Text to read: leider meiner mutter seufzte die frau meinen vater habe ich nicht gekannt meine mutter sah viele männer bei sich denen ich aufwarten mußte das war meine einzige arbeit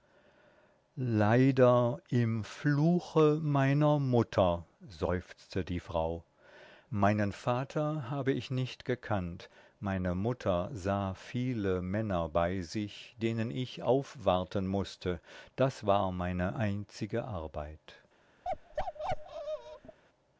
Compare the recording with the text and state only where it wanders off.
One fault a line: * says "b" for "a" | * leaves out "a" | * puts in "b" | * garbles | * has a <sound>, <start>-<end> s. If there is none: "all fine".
* puts in "im fluche"
* has a bark, 18.4-20.0 s